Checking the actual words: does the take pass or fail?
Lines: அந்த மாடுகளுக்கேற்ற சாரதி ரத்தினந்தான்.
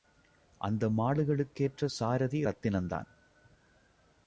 pass